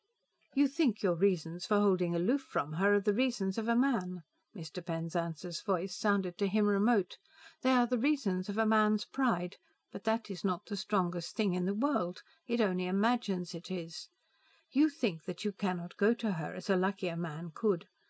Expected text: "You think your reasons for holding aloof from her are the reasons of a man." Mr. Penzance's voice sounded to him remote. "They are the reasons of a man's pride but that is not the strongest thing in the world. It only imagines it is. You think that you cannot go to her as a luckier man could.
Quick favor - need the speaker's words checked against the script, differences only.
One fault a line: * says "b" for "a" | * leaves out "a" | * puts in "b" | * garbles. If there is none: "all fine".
all fine